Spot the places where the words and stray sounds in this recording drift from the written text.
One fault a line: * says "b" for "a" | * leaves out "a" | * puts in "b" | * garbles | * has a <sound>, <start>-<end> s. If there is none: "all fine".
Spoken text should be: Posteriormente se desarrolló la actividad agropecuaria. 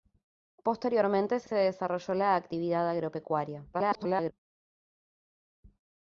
* puts in "se"
* garbles